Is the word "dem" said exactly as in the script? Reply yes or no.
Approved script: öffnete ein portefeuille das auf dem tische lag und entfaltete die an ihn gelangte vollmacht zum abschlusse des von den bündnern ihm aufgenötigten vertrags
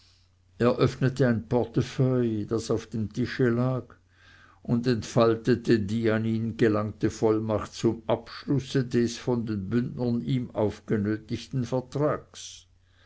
yes